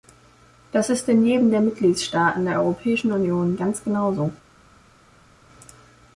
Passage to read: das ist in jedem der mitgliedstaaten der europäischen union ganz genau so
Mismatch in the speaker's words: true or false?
false